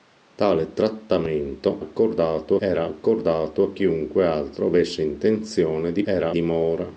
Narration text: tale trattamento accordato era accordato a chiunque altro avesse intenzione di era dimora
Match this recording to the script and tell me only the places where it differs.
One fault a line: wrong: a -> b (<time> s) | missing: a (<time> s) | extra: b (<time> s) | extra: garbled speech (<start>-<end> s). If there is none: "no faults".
no faults